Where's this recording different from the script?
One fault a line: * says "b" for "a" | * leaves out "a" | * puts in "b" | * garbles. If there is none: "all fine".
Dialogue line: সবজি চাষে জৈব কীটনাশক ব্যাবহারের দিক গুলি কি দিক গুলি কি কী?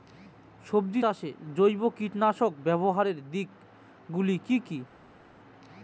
* leaves out "দিক গুলি কি"